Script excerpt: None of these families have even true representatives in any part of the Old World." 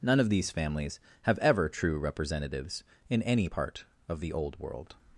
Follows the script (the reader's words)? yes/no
no